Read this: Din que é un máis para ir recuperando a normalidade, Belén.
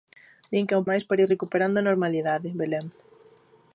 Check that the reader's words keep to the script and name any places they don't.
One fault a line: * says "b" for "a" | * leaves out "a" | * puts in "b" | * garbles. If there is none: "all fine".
all fine